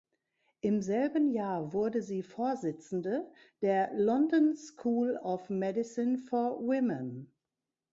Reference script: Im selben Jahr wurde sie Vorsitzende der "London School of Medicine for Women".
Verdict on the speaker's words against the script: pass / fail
pass